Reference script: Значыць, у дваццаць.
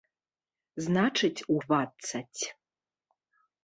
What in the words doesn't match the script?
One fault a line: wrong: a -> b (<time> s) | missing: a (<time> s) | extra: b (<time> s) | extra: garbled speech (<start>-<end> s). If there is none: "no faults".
no faults